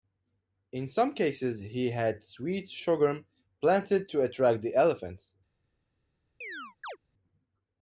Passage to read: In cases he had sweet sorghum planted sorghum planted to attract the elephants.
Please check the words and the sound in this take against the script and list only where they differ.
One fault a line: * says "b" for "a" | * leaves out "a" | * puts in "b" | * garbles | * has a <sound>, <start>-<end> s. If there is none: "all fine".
* puts in "some"
* leaves out "sorghum planted"
* has a chirp, 6.4-7.0 s